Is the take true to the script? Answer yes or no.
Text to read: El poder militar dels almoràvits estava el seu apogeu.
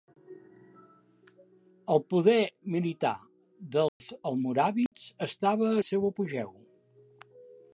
yes